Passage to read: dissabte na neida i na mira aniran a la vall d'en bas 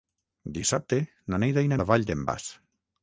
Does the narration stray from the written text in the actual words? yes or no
yes